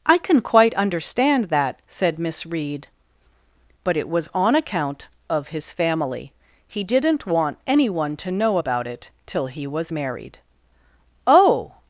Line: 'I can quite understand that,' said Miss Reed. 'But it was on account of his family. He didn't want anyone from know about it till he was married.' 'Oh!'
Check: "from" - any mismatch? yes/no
yes